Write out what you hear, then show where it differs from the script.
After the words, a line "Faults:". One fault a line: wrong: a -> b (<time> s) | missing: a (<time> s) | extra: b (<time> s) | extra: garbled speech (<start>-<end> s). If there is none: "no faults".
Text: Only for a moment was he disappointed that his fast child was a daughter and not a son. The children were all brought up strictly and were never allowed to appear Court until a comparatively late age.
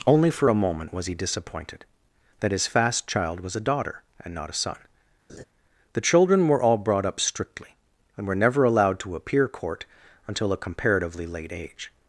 Only for a moment was he disappointed that his fast child was a daughter and not a son. The children were all brought up strictly and were never allowed to appear Court until a comparatively late age.
Faults:
no faults